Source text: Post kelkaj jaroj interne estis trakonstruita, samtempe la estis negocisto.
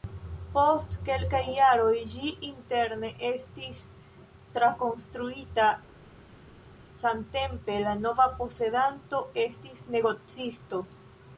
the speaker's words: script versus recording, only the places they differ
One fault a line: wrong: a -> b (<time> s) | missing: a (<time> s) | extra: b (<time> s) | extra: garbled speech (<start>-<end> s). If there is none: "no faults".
extra: ĝi (2.1 s)
extra: nova posedanto (8.0 s)